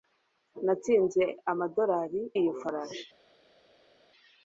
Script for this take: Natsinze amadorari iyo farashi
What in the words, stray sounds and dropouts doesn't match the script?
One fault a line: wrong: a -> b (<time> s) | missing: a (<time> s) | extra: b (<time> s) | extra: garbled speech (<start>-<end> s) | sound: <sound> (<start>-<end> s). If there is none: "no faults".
no faults